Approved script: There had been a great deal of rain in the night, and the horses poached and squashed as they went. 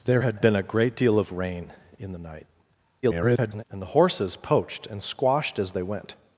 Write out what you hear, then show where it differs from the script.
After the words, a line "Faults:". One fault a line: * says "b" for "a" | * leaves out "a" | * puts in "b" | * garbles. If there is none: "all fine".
There had been a great deal of rain in the night, [garbled] and the horses poached and squashed as they went.
Faults:
* garbles